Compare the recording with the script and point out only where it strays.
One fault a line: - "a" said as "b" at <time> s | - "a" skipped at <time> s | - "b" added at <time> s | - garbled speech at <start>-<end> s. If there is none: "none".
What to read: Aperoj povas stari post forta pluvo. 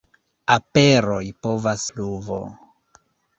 - "stari post forta" skipped at 1.8 s